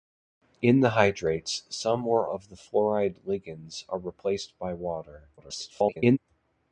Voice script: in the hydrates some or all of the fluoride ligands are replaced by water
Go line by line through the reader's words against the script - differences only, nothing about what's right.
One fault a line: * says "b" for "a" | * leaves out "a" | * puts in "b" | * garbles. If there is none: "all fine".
* leaves out "all"
* garbles